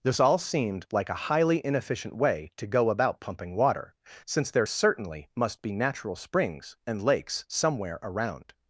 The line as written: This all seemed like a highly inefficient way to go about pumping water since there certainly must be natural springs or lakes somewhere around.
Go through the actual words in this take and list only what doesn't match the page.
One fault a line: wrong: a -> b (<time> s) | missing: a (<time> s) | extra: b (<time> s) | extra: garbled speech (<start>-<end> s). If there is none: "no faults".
wrong: or -> and (6.9 s)